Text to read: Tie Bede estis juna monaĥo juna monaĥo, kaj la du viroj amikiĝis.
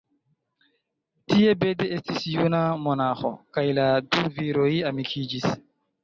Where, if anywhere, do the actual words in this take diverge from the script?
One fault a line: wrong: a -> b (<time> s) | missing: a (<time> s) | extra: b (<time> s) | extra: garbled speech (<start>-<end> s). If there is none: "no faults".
missing: juna monaĥo (3.3 s)